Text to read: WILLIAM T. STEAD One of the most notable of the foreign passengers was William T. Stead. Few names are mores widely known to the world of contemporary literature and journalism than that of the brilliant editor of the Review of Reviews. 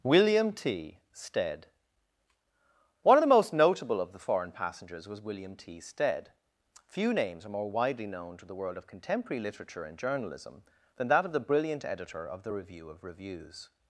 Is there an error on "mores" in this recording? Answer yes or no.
yes